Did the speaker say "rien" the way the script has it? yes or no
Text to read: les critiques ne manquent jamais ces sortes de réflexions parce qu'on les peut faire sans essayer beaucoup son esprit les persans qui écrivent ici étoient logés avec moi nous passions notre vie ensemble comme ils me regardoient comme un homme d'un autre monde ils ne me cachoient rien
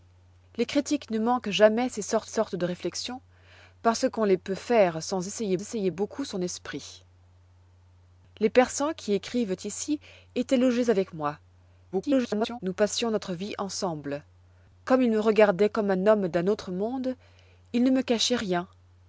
yes